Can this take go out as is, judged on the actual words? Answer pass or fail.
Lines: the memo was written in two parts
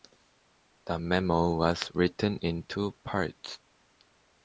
pass